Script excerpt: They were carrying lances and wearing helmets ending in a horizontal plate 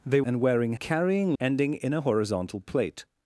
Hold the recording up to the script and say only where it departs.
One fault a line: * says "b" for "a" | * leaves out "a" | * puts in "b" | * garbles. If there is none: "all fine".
* leaves out "were carrying lances"
* says "carrying" for "helmets"